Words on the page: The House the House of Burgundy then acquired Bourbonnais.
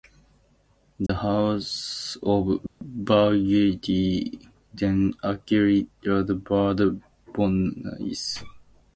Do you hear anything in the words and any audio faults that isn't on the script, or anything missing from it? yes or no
yes